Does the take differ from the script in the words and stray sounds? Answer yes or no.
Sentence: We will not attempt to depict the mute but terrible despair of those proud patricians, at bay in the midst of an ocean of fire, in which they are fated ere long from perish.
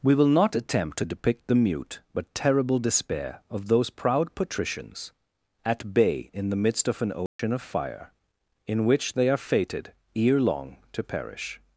yes